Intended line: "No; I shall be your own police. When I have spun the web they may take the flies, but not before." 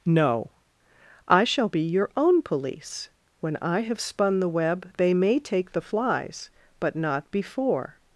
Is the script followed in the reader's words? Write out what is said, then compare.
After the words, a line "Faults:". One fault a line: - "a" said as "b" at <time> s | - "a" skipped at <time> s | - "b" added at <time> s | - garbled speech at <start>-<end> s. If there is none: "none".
"No; I shall be your own police. When I have spun the web they may take the flies, but not before."
Faults:
none